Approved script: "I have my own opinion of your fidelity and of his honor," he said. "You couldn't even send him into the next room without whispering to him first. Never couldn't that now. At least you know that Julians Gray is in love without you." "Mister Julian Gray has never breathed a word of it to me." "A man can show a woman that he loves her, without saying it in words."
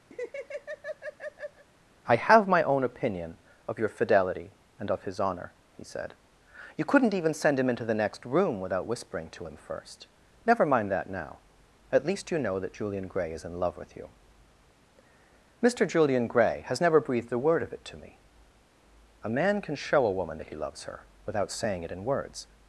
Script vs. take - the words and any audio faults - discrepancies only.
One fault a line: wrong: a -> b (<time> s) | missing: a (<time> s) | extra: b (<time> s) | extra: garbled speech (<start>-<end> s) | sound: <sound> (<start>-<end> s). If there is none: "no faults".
sound: laugh (0.1-1.6 s)
wrong: couldn't -> mind (10.6 s)
wrong: Julians -> Julian (12.7 s)
wrong: without -> with (13.8 s)